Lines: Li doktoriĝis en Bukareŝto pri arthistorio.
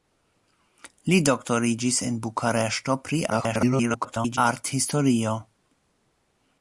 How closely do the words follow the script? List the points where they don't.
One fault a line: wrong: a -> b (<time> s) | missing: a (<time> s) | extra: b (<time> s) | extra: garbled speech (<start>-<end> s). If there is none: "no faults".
extra: garbled speech (3.3-4.4 s)